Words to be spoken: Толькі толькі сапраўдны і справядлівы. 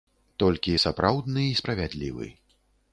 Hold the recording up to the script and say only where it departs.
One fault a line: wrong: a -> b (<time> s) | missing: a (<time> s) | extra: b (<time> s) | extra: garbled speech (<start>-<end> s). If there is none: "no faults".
missing: толькі (0.7 s)